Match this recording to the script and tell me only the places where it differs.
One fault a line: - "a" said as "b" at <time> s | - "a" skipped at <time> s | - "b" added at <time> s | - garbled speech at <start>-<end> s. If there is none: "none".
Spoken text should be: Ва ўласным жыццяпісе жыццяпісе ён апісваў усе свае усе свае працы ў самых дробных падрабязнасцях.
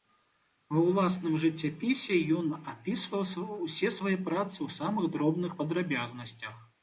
- "жыццяпісе" skipped at 2.2 s
- "усе свае" skipped at 4.2 s